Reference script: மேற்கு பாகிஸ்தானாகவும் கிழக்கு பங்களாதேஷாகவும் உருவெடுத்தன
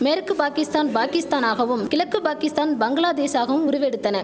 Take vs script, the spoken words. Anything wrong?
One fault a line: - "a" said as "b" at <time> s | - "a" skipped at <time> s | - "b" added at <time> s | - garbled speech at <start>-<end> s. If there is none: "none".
- "பாகிஸ்தான்" added at 0.3 s
- "பாகிஸ்தான்" added at 2.2 s